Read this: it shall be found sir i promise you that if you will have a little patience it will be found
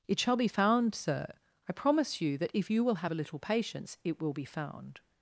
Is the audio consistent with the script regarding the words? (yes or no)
yes